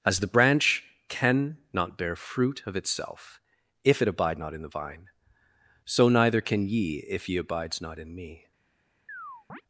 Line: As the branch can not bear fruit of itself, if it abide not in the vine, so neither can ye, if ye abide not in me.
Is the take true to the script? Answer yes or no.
no